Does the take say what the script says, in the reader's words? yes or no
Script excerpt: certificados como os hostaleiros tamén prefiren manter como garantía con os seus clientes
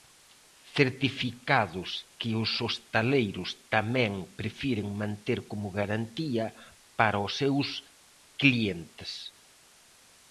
no